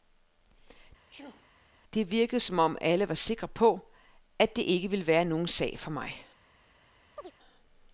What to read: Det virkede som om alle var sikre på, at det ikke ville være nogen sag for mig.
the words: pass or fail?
pass